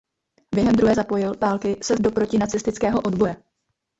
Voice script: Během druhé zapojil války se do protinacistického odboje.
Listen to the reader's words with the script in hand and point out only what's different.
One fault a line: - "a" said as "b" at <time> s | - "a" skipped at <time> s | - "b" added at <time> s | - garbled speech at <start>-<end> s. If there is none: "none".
none